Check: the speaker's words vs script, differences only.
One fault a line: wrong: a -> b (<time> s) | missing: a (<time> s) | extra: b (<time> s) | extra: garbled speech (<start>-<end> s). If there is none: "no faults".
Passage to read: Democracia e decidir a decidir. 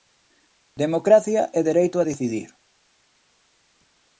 wrong: decidir -> dereito (1.7 s)